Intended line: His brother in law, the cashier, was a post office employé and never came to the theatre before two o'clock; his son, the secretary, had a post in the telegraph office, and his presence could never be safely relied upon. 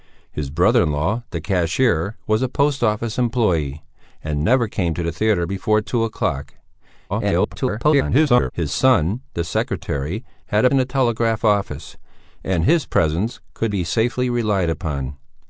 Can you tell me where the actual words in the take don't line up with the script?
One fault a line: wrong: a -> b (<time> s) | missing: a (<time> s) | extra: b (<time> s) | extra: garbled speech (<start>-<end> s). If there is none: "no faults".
extra: garbled speech (7.1-8.5 s)
missing: post (10.7 s)
missing: never (13.7 s)